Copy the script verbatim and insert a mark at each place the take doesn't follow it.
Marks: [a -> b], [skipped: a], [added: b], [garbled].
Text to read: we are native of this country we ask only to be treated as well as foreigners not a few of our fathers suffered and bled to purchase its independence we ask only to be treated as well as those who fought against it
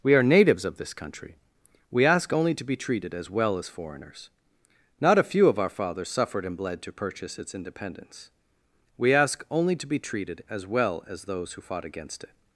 we are [native -> natives] of this country we ask only to be treated as well as foreigners not a few of our fathers suffered and bled to purchase its independence we ask only to be treated as well as those who fought against it